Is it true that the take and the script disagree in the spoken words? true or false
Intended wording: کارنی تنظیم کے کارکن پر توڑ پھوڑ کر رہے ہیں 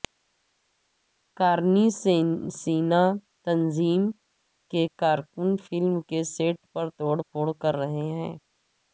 true